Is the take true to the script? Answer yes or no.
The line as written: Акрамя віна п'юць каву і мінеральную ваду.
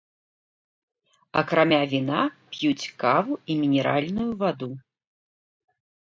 yes